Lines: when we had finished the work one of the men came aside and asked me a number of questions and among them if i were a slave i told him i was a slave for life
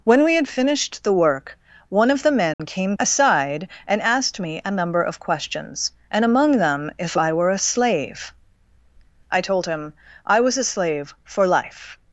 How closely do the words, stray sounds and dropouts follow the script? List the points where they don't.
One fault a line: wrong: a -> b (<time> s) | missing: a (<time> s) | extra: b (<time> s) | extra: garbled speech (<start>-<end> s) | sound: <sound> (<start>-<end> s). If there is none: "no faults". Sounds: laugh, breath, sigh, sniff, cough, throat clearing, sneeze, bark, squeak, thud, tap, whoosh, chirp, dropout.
sound: dropout (2.5-2.6 s)